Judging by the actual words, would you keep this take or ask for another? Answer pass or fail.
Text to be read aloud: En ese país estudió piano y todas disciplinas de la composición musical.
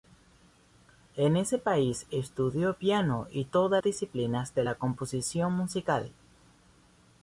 pass